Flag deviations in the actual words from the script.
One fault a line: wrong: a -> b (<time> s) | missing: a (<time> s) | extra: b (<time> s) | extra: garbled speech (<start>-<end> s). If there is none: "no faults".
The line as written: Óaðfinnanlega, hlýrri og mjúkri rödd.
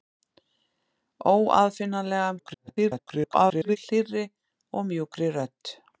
extra: garbled speech (2.4-3.8 s)